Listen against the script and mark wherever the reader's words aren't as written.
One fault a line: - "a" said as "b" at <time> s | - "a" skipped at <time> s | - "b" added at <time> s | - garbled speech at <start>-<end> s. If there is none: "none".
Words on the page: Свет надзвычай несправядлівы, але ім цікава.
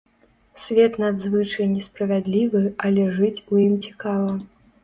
- "жыць у" added at 3.2 s